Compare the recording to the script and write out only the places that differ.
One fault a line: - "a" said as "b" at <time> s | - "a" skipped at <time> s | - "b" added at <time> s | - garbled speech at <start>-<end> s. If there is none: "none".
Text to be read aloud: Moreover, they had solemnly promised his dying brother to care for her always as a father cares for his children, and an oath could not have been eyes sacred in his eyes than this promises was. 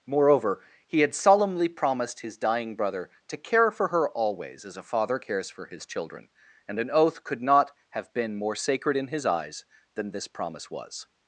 - "they" said as "he" at 0.9 s
- "eyes" said as "more" at 8.4 s
- "promises" said as "promise" at 10.3 s